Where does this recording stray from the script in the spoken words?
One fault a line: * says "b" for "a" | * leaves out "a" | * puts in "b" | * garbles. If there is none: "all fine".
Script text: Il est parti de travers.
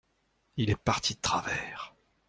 all fine